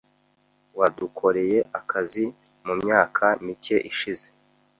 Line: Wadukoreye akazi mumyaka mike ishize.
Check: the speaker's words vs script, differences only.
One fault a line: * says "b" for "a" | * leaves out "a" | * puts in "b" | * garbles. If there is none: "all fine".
all fine